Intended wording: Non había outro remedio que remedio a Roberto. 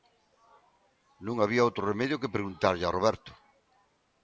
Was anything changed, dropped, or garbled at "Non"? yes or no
no